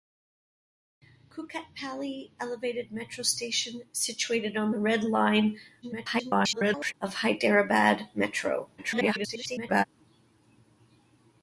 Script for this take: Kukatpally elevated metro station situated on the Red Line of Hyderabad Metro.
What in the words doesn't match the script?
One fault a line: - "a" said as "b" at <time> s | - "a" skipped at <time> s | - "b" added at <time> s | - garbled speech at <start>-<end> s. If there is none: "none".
- garbled speech at 5.8-6.9 s
- garbled speech at 8.8-9.8 s